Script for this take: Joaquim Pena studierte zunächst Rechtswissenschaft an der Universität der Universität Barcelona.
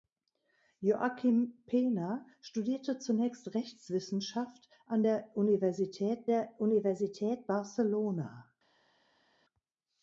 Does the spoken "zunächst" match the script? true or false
true